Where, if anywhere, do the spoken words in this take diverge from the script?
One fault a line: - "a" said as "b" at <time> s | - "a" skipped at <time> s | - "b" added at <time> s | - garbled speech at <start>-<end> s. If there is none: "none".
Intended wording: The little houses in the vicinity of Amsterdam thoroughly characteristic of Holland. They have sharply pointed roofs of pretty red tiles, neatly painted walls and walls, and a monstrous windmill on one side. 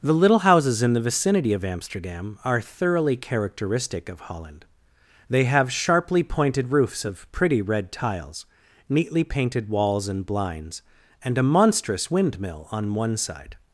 - "are" added at 2.4 s
- "walls" said as "blinds" at 10.3 s